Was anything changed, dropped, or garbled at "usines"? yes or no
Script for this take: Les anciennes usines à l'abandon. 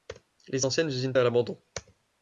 no